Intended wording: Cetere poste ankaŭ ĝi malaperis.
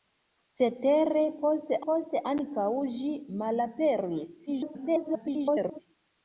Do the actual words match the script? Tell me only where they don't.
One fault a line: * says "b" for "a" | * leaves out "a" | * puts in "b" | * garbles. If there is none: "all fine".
* puts in "poste"
* garbles